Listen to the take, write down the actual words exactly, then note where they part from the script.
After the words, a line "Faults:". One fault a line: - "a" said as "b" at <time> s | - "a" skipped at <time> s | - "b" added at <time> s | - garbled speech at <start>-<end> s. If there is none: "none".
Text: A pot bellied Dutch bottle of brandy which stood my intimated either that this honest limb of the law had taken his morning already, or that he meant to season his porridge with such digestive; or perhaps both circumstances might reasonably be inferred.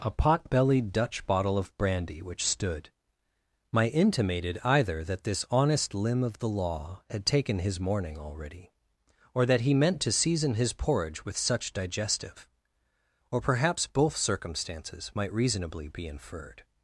A pot bellied Dutch bottle of brandy which stood my intimated either that this honest limb of the law had taken his morning already, or that he meant to season his porridge with such digestive; or perhaps both circumstances might reasonably be inferred.
Faults:
none